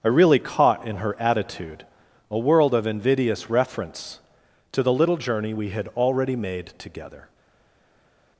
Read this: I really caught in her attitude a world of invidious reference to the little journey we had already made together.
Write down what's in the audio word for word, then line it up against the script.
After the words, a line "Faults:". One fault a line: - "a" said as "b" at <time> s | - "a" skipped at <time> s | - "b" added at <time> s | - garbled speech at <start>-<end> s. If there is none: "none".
I really caught in her attitude a world of invidious reference to the little journey we had already made together.
Faults:
none